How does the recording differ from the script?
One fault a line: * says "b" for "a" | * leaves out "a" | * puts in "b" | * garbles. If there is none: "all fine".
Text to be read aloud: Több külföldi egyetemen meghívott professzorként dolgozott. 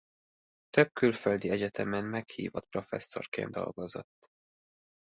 all fine